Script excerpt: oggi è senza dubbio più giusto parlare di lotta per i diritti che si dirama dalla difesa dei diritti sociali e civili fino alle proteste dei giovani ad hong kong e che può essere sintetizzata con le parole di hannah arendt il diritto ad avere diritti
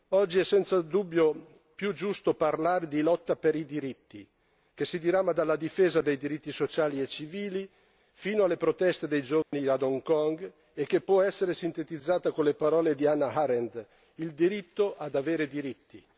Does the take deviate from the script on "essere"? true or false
false